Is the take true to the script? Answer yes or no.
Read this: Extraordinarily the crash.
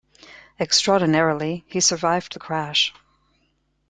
no